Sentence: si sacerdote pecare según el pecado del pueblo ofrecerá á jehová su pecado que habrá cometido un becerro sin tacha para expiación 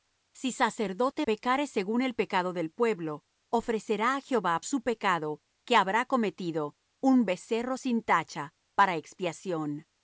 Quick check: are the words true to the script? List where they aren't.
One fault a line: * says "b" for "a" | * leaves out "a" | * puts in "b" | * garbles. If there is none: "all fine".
all fine